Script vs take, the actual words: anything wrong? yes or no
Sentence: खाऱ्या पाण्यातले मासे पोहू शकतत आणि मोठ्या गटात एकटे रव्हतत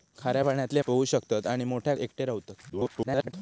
yes